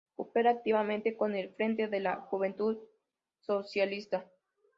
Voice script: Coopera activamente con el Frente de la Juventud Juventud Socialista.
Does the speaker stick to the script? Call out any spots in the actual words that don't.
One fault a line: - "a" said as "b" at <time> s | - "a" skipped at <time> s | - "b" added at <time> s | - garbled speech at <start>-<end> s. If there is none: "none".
- "Juventud" skipped at 2.8 s